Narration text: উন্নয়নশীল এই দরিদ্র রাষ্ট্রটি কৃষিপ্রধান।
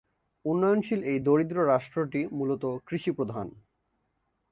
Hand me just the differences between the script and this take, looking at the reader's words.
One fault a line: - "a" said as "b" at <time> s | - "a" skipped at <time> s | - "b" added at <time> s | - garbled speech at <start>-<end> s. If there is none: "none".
- "মূলত" added at 2.3 s